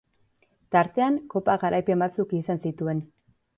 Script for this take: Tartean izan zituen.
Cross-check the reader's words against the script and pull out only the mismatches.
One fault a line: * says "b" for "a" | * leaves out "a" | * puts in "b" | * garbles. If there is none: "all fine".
* puts in "kopa garaipen batzuk"